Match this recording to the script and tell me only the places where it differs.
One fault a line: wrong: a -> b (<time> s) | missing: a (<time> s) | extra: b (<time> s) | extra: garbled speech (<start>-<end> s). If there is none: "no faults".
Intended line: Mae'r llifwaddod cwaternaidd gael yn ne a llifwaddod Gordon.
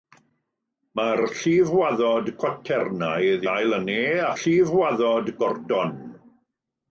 no faults